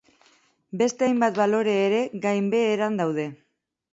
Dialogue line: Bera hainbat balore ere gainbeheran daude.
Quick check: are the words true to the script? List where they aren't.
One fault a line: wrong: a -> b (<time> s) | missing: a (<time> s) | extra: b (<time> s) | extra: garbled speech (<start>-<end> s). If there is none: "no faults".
wrong: Bera -> Beste (0.8 s)